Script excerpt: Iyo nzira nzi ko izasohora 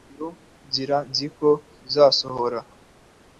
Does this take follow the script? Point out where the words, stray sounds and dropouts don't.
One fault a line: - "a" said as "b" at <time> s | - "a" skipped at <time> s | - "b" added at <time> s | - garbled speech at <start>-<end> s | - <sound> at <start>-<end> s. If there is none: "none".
none